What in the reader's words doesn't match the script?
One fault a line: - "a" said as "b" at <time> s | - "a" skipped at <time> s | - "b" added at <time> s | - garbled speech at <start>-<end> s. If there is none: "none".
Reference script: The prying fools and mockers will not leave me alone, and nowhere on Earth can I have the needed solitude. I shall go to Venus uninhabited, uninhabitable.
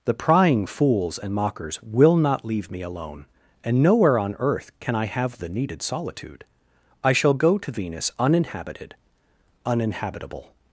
none